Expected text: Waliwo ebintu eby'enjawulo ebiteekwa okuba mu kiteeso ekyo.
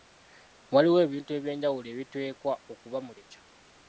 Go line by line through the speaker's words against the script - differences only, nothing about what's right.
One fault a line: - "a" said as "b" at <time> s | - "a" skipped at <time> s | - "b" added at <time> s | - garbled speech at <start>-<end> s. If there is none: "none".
- "kiteeso" skipped at 3.1 s